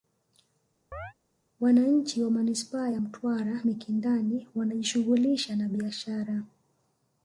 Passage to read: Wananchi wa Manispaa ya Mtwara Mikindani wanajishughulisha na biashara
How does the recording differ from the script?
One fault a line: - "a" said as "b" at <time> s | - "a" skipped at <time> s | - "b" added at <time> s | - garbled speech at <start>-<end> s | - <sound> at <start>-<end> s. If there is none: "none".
- chirp at 0.9-1.1 s